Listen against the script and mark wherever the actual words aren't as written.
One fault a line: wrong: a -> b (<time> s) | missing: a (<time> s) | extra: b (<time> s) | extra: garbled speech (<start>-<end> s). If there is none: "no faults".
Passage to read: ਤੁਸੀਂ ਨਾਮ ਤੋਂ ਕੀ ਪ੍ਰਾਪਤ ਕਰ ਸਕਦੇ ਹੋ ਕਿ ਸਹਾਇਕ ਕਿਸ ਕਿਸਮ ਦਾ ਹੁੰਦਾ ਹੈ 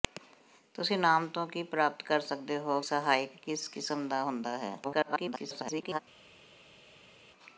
missing: ਕਿ (2.8 s)
extra: garbled speech (4.8-6.0 s)